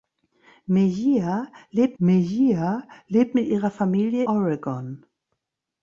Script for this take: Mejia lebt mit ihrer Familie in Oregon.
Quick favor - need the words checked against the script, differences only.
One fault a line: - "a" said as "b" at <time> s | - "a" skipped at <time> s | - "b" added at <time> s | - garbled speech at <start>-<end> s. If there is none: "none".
- "mejia lebt" added at 2.0 s
- "in" skipped at 4.2 s